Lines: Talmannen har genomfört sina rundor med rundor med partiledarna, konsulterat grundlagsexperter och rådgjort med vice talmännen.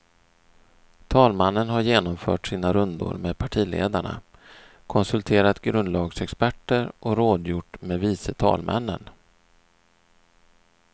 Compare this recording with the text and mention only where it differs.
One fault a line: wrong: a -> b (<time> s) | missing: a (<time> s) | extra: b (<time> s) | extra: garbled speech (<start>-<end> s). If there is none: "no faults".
missing: rundor med (3.4 s)